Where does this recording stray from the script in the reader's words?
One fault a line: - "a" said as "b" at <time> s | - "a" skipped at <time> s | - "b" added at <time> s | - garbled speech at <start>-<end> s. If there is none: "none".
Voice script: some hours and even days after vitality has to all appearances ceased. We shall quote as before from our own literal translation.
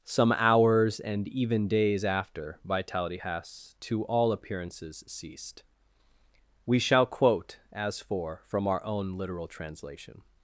- "before" said as "for" at 8.0 s